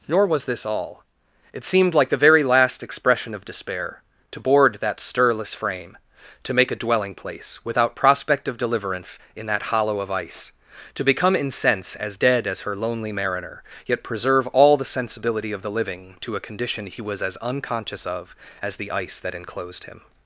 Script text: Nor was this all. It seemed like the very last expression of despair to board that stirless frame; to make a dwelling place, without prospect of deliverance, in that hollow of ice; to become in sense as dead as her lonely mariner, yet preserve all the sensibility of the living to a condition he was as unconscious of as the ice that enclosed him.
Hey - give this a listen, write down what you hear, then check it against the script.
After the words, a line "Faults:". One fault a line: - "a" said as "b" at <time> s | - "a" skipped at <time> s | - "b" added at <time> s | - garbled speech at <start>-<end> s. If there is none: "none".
Nor was this all. It seemed like the very last expression of despair to board that stirless frame; to make a dwelling place, without prospect of deliverance, in that hollow of ice; to become in sense as dead as her lonely mariner, yet preserve all the sensibility of the living to a condition he was as unconscious of as the ice that enclosed him.
Faults:
none